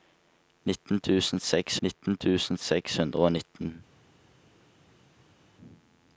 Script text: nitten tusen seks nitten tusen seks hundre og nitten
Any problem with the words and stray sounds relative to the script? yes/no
no